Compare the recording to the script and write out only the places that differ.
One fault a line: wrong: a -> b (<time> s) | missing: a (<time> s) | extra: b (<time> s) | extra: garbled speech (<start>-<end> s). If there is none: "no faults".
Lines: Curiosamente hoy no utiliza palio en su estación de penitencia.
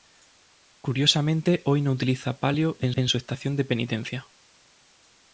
extra: en (2.9 s)